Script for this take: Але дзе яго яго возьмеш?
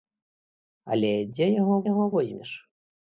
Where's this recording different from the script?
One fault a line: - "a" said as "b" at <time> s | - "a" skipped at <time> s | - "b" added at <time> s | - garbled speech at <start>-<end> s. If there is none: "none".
none